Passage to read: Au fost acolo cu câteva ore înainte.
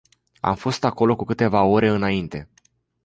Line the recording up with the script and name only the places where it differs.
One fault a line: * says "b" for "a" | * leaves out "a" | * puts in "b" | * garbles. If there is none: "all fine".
* says "Am" for "Au"